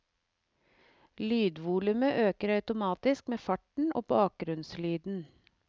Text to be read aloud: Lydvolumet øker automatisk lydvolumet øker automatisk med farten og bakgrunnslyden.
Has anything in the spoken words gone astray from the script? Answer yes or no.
yes